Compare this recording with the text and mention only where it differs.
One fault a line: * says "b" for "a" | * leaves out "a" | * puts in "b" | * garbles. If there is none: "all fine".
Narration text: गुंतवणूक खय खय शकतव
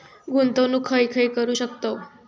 * puts in "करू"